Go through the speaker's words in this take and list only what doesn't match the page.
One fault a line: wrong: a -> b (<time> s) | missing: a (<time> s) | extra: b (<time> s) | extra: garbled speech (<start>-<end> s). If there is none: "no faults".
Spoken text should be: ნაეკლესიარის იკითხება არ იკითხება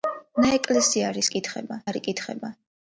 no faults